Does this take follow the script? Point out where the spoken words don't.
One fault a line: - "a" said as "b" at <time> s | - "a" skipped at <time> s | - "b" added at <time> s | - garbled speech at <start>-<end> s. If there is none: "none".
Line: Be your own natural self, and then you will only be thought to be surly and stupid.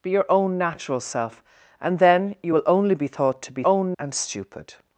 - "surly" said as "own" at 3.6 s